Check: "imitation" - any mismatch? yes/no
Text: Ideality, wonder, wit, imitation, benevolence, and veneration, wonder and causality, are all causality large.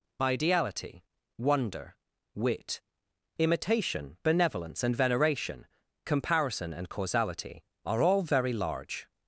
no